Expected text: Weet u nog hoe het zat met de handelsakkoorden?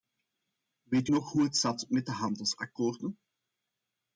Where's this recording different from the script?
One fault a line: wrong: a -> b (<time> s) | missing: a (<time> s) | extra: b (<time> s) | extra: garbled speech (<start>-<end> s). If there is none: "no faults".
no faults